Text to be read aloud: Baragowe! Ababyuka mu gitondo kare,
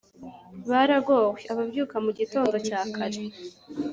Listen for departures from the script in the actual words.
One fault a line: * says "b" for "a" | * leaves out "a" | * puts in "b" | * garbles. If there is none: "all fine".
* puts in "cya"